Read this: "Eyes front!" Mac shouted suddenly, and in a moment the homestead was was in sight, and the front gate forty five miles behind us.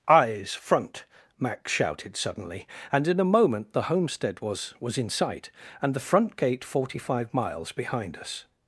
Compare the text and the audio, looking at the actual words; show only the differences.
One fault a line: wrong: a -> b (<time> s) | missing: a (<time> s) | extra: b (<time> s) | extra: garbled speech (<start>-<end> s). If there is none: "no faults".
no faults